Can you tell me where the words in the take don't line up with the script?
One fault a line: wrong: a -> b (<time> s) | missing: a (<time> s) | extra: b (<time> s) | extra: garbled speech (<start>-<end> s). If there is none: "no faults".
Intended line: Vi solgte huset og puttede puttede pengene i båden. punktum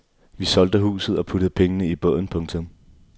missing: puttede (1.5 s)